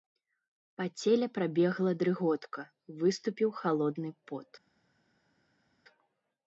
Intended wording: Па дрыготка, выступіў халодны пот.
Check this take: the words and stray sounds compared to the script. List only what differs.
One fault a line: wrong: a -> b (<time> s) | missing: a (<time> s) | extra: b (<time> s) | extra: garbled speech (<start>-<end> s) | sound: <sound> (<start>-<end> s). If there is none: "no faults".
extra: целе прабегла (1.0 s)